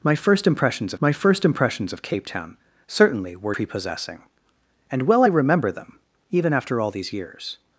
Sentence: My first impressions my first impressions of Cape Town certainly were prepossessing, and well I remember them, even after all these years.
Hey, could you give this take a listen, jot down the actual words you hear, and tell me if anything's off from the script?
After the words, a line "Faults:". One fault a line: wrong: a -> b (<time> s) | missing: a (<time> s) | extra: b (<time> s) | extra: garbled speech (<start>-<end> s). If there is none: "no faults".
My first impressions my first impressions of Cape Town certainly were prepossessing, and well I remember them, even after all these years.
Faults:
no faults